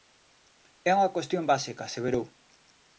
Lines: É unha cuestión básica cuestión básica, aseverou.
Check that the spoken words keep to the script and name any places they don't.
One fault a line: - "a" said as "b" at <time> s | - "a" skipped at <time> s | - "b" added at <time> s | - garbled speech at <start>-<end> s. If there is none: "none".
- "cuestión básica" skipped at 1.8 s